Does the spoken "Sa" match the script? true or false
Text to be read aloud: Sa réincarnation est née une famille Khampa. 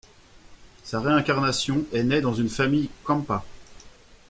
true